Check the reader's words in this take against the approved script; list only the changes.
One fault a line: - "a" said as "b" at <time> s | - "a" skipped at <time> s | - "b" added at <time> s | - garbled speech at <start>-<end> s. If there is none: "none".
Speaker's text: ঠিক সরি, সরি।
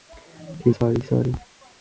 none